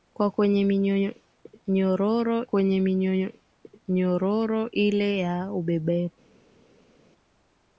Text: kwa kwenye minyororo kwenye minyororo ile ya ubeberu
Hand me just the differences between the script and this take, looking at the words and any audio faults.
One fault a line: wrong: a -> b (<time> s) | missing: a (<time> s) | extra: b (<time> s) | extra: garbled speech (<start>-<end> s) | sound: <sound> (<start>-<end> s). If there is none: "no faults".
no faults